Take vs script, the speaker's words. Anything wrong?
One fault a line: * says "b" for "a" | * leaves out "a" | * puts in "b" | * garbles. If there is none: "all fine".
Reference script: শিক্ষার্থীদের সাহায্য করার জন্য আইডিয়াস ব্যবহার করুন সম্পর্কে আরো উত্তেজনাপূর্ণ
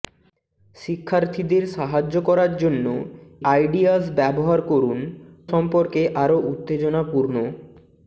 all fine